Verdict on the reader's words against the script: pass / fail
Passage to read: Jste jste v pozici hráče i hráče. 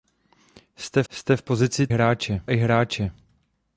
pass